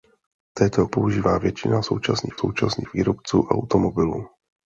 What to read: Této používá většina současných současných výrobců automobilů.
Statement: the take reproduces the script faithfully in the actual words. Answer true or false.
true